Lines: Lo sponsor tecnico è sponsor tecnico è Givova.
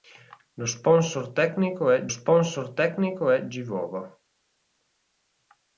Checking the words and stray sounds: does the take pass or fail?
pass